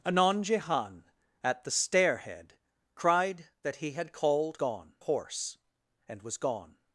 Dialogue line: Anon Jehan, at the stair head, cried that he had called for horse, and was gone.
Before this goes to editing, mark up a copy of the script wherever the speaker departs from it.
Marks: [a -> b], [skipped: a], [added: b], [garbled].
Anon Jehan, at the stair head, cried that he had called [for -> gone] horse, and was gone.